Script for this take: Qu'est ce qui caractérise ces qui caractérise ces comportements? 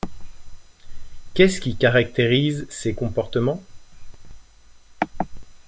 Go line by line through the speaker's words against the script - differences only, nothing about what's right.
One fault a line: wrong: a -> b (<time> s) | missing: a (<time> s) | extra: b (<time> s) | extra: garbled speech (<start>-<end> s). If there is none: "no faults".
missing: qui caractérise ces (3.0 s)